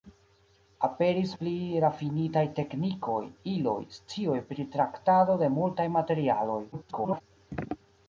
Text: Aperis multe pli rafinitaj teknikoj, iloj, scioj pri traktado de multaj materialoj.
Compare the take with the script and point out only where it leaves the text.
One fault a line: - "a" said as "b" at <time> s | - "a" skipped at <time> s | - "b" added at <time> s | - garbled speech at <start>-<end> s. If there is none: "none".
- "multe" skipped at 1.3 s
- garbled speech at 6.7-7.2 s